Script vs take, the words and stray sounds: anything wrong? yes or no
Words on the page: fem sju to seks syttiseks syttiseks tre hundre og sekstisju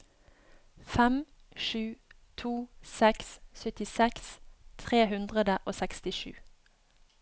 yes